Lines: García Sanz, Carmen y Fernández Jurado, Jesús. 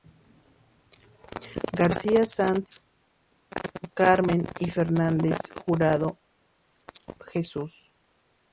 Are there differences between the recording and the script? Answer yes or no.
no